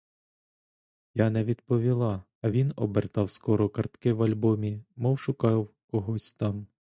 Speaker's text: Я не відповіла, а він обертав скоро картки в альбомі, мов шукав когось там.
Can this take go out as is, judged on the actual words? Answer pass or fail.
pass